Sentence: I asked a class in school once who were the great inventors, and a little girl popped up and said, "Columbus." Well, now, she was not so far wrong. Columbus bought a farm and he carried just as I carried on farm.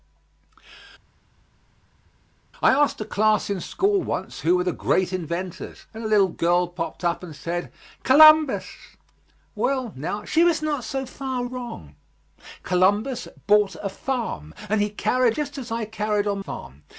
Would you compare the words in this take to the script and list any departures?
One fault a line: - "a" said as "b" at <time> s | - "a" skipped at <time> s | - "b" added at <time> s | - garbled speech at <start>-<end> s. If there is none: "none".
none